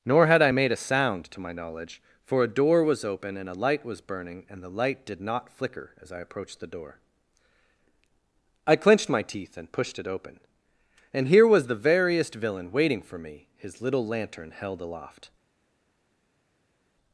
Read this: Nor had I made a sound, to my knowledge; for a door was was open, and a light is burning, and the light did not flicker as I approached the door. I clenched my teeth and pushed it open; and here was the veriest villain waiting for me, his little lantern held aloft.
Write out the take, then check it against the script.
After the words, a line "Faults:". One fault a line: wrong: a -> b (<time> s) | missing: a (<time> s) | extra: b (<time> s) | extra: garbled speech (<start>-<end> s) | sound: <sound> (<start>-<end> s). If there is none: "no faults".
Nor had I made a sound, to my knowledge; for a door was open, and a light was burning, and the light did not flicker as I approached the door. I clenched my teeth and pushed it open; and here was the veriest villain waiting for me, his little lantern held aloft.
Faults:
missing: was (3.0 s)
wrong: is -> was (3.8 s)